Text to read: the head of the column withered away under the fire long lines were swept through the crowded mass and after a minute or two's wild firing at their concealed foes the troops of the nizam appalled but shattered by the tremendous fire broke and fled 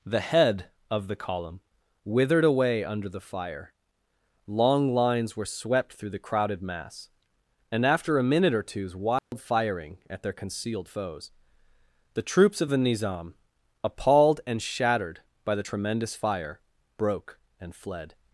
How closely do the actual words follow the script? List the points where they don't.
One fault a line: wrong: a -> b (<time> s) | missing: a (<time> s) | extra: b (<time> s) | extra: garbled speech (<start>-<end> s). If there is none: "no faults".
wrong: but -> and (14.5 s)